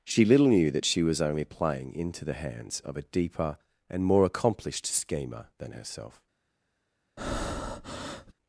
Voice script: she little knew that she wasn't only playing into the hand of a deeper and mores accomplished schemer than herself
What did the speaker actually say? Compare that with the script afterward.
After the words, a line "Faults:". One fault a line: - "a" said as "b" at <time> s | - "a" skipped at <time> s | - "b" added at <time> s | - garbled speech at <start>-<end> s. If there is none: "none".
she little knew that she was only playing into the hands of a deeper and more accomplished schemer than herself
Faults:
- "wasn't" said as "was" at 1.0 s
- "hand" said as "hands" at 2.3 s
- "mores" said as "more" at 4.0 s